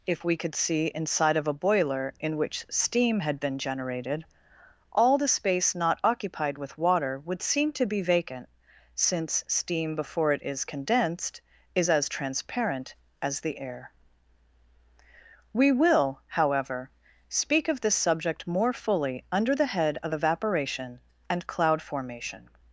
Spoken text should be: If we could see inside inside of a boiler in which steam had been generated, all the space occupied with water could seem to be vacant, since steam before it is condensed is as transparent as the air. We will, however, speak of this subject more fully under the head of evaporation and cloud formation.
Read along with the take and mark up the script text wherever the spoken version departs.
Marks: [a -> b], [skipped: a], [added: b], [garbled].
If we could see inside [skipped: inside] of a boiler in which steam had been generated, all the space [added: not] occupied with water [could -> would] seem to be vacant, since steam before it is condensed is as transparent as the air. We will, however, speak of this subject more fully under the head of evaporation and cloud formation.